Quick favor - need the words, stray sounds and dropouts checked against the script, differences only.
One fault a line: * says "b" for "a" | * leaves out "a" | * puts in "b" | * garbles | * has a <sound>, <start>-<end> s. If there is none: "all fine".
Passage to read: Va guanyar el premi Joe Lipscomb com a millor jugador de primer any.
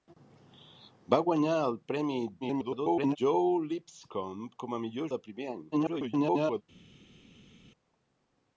* garbles
* leaves out "jugador"
* garbles